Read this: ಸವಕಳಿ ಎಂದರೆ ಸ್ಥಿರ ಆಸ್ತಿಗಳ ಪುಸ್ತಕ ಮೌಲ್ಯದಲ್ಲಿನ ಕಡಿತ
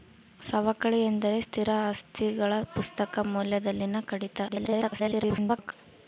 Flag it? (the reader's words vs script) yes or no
yes